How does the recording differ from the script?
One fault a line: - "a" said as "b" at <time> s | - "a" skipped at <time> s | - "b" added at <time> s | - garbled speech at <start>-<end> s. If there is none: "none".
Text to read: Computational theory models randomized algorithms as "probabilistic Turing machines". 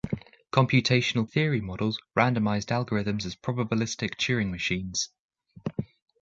none